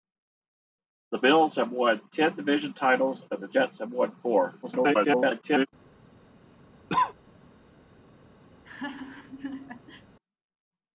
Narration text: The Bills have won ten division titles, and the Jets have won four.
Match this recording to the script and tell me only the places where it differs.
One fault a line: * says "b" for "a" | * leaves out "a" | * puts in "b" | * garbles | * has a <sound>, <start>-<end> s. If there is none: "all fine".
* garbles
* has a cough, 6.9-7.1 s
* has a laugh, 8.5-10.1 s